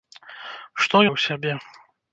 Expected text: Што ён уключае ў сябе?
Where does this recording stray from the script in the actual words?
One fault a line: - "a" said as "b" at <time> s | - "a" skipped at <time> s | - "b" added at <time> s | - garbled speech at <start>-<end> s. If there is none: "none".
- "ён уключае" skipped at 1.0 s